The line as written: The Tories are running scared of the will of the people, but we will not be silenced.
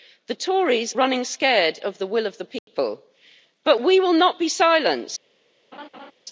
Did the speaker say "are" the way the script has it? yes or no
no